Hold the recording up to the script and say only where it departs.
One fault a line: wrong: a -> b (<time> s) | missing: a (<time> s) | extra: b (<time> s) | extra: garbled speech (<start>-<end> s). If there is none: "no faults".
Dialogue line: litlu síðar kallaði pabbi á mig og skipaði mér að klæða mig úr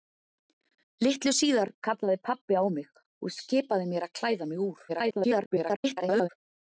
extra: garbled speech (4.9-6.3 s)